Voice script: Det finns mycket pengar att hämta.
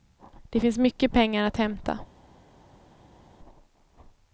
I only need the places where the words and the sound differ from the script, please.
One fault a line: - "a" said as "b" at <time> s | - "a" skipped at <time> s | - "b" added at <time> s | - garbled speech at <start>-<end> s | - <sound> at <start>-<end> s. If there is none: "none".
none